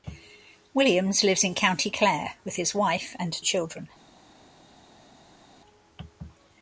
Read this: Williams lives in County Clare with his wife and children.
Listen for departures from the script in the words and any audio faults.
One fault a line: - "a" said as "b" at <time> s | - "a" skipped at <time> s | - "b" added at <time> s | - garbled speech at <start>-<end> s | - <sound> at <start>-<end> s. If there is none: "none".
none